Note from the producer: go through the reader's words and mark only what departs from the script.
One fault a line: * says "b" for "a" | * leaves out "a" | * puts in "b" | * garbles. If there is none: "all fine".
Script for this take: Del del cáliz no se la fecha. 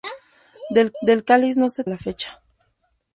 all fine